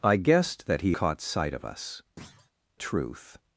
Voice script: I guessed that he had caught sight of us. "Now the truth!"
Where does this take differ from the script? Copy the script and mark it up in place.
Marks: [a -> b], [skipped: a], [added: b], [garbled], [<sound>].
I guessed that he [skipped: had] caught sight of us. [skipped: "Now the] [thud] truth!"